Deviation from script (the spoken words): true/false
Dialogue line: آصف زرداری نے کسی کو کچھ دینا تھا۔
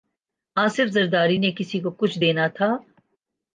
false